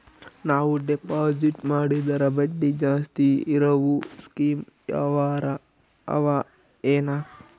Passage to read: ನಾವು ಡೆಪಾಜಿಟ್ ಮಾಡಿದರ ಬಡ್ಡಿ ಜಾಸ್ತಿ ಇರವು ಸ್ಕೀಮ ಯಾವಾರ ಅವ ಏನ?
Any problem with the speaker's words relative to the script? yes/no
no